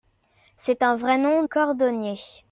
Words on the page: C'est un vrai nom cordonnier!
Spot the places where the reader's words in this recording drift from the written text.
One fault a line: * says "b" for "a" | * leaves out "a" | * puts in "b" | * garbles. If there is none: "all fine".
all fine